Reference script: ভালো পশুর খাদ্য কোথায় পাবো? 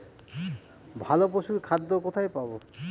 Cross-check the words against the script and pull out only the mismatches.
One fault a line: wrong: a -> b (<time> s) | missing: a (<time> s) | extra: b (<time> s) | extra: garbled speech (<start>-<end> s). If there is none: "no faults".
no faults